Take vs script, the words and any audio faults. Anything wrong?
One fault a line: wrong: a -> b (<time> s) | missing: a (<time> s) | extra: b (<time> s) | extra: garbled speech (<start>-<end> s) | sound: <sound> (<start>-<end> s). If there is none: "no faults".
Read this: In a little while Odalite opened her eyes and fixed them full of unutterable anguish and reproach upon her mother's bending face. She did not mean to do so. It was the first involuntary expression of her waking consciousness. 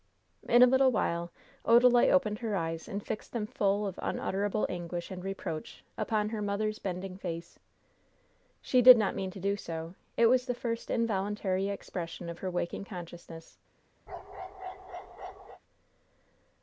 sound: bark (14.1-15.6 s)